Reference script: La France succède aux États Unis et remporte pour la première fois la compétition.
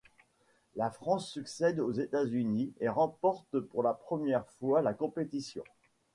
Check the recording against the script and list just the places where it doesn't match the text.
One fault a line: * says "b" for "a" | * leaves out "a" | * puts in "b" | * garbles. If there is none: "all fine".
all fine